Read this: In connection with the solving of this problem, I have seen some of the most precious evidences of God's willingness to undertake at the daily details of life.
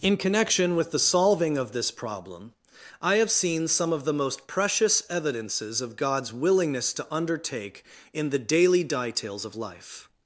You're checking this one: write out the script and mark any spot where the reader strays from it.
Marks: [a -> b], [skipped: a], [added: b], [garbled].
In connection with the solving of this problem, I have seen some of the most precious evidences of God's willingness to undertake [at -> in] the daily details of life.